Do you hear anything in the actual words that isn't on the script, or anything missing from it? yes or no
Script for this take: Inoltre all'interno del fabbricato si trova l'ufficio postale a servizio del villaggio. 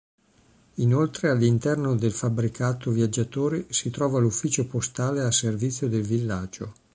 yes